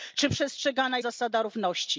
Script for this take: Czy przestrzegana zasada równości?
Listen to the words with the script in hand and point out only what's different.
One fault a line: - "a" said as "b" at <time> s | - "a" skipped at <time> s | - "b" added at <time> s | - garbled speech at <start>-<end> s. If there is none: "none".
none